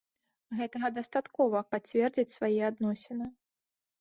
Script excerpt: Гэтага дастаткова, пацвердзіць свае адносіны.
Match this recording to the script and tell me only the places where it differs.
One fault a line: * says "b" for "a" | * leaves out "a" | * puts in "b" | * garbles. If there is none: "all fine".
all fine